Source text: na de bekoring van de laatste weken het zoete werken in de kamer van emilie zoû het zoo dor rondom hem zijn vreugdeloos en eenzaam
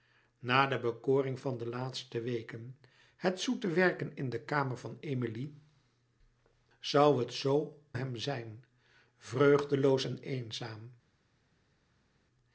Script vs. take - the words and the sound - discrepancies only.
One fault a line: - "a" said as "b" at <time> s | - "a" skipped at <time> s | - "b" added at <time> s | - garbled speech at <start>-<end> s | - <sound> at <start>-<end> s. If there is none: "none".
- "dor rondom" skipped at 7.8 s